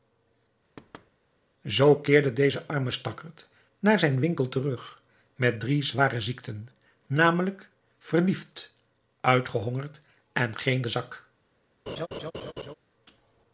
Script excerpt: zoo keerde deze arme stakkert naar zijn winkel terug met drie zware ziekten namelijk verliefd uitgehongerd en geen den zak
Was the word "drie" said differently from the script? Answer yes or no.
no